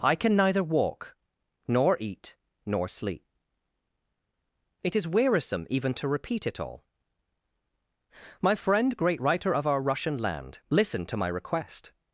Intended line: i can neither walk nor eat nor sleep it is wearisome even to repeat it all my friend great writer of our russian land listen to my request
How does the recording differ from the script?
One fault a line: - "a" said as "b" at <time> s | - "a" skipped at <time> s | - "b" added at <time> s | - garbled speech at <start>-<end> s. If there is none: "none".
none